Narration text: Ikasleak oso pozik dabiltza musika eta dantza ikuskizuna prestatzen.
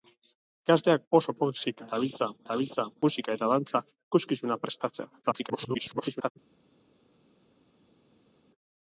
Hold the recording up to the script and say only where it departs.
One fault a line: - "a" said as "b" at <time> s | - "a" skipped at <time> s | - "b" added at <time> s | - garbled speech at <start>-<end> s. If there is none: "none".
- "dabiltza" added at 2.5 s
- garbled speech at 5.2-6.3 s